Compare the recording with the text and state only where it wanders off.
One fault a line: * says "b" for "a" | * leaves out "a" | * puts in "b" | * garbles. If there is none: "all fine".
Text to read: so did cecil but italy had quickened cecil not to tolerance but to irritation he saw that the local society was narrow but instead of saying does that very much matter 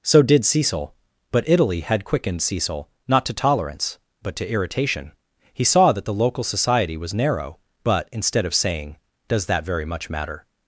all fine